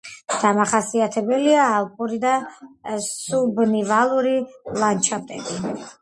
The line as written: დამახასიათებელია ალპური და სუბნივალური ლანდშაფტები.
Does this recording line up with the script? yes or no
yes